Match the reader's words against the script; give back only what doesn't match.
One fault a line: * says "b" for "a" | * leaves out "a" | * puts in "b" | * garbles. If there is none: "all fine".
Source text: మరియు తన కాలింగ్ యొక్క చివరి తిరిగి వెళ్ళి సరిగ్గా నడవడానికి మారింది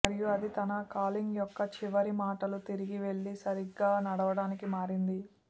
* puts in "అది"
* puts in "మాటలు"